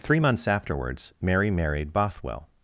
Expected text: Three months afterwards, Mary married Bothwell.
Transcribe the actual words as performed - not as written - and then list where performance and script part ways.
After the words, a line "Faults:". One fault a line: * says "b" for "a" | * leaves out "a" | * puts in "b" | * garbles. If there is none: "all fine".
Three months afterwards, Mary married Bothwell.
Faults:
all fine